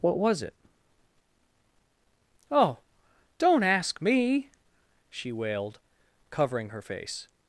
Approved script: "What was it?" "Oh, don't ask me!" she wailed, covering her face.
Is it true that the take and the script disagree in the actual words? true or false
false